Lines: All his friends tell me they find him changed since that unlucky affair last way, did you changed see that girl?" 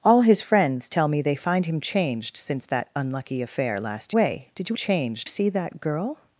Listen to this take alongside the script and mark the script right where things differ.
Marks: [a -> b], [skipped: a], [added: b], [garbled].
All his friends tell me they find him changed since that unlucky affair last way, did you changed see that girl?"